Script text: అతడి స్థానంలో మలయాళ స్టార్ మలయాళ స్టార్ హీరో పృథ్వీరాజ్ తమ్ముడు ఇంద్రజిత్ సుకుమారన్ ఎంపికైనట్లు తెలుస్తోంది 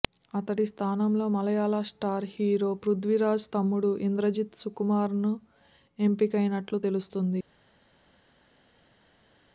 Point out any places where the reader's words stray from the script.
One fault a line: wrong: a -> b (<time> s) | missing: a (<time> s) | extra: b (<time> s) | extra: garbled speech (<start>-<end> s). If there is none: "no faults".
missing: మలయాళ స్టార్ (2.2 s)